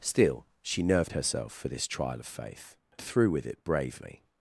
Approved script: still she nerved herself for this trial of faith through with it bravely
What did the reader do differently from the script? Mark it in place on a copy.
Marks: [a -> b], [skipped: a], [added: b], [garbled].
still she nerved herself for this trial of faith through with it bravely